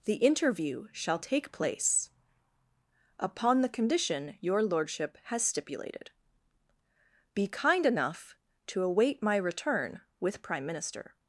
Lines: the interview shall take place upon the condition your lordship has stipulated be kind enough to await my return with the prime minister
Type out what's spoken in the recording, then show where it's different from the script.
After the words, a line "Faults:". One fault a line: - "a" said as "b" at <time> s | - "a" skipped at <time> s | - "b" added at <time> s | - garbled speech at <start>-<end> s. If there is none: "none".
the interview shall take place upon the condition your lordship has stipulated be kind enough to await my return with prime minister
Faults:
- "the" skipped at 10.4 s